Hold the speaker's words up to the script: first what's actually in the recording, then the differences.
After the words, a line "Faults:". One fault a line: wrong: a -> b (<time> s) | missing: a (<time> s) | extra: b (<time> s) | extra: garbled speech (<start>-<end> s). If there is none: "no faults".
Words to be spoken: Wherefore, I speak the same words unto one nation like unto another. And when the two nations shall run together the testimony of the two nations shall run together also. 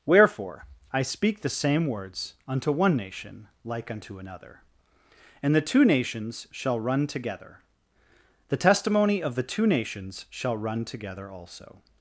Wherefore, I speak the same words unto one nation like unto another. And the two nations shall run together the testimony of the two nations shall run together also.
Faults:
missing: when (5.5 s)